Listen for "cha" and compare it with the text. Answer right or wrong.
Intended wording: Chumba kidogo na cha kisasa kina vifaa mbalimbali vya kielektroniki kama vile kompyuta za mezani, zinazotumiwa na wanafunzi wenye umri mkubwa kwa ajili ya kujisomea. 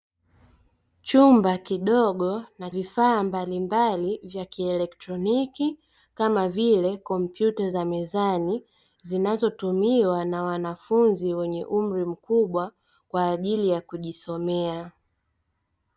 wrong